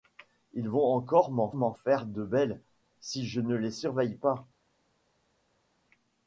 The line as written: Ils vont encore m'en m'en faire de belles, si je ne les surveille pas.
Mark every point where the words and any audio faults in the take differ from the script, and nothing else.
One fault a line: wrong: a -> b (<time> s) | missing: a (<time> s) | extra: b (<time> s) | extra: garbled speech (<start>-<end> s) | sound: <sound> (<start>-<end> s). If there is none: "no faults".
no faults